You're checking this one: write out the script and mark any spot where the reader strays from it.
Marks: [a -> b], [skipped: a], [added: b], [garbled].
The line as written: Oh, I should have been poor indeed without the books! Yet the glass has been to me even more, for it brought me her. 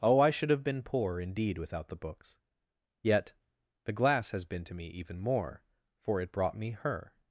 Oh, I should have been poor indeed without the books! Yet the glass has been to me even more, for it brought me her.